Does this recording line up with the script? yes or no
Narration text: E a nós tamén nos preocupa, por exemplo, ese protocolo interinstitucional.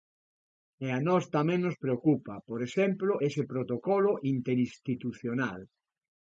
yes